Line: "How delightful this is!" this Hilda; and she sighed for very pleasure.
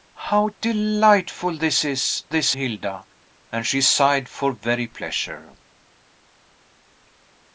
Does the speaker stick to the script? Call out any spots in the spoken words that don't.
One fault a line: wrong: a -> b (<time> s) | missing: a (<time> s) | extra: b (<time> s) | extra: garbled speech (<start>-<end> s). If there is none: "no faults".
no faults